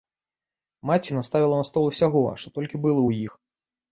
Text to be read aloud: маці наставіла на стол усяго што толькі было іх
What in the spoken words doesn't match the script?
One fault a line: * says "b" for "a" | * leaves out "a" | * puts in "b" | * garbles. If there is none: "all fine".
* puts in "ў"